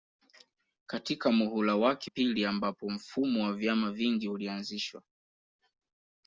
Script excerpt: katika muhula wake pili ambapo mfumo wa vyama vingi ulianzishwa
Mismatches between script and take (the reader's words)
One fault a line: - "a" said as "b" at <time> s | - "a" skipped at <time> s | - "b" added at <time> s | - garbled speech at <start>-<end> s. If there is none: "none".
none